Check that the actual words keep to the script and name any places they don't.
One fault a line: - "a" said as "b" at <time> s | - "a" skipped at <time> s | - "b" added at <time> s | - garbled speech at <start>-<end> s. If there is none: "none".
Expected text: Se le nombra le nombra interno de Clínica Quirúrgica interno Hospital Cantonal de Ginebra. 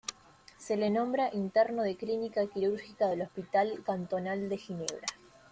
- "le nombra" skipped at 1.3 s
- "interno" said as "del" at 3.1 s